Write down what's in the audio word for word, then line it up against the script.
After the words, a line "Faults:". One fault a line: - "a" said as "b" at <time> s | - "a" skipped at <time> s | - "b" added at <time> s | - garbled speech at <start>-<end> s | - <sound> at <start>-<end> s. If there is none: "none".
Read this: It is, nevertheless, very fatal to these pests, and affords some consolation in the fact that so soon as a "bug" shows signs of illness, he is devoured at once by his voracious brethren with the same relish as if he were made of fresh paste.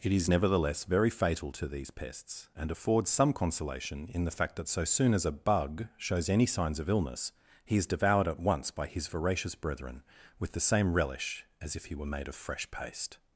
It is, nevertheless, very fatal to these pests, and affords some consolation in the fact that so soon as a "bug" shows any signs of illness, he is devoured at once by his voracious brethren with the same relish as if he were made of fresh paste.
Faults:
- "any" added at 6.3 s